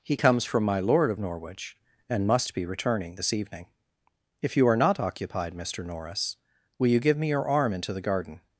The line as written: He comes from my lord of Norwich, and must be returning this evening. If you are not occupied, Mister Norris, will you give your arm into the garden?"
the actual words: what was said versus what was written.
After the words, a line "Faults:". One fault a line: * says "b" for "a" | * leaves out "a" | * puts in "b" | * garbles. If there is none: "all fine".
He comes from my lord of Norwich, and must be returning this evening. If you are not occupied, Mister Norris, will you give me your arm into the garden?"
Faults:
* puts in "me"